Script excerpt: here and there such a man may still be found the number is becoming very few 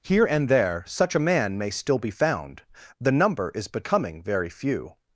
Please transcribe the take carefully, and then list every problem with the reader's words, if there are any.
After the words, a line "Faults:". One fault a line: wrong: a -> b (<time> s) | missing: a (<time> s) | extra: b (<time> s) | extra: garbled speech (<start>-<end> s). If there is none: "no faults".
here and there such a man may still be found the number is becoming very few
Faults:
no faults